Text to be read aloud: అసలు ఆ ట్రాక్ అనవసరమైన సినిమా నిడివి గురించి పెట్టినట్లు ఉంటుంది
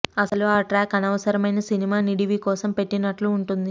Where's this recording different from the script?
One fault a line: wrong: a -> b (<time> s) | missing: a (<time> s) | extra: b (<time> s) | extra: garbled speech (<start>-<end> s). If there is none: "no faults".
wrong: గురించి -> కోసం (2.4 s)